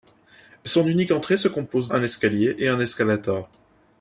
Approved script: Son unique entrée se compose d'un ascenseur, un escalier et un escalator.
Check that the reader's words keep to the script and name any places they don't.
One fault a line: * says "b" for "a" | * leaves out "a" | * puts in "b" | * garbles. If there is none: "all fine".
* leaves out "d'un ascenseur"